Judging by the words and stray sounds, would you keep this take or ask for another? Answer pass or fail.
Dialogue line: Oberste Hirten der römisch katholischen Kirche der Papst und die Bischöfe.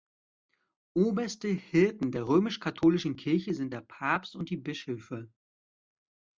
fail